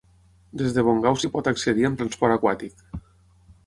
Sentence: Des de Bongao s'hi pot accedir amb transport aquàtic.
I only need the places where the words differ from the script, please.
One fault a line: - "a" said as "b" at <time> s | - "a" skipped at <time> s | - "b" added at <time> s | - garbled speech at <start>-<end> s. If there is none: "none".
none